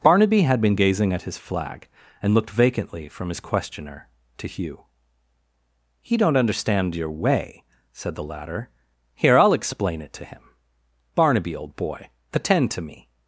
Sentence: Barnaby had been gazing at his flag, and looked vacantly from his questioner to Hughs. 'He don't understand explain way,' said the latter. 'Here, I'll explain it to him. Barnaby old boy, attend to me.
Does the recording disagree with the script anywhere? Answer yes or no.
yes